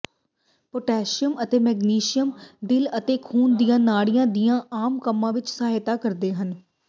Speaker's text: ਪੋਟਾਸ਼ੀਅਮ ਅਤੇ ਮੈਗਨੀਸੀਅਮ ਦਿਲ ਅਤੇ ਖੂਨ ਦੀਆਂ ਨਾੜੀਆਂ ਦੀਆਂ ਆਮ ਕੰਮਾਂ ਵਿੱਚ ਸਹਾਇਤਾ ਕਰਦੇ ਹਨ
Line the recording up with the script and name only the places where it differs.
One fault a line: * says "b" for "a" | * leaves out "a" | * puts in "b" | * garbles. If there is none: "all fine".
all fine